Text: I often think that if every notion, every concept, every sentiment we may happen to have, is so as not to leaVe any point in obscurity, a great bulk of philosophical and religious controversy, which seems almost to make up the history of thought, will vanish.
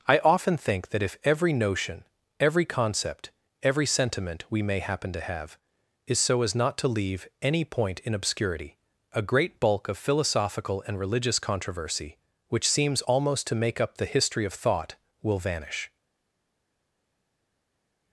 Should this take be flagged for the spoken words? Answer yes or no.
no